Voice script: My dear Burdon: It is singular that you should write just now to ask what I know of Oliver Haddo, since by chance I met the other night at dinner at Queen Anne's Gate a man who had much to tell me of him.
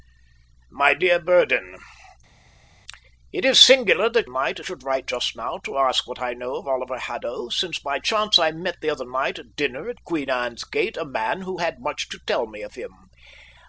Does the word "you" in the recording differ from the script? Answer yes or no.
yes